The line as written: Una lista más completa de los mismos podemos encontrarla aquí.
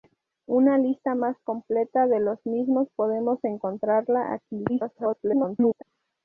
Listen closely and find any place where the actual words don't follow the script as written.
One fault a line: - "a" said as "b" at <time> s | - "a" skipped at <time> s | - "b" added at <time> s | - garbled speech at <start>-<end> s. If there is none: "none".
- garbled speech at 4.7-5.8 s